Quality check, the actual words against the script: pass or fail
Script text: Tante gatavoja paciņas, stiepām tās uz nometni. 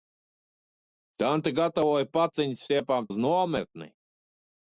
fail